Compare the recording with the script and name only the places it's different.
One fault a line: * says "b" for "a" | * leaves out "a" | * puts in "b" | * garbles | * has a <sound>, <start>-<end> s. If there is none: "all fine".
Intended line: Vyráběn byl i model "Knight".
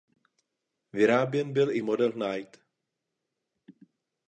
all fine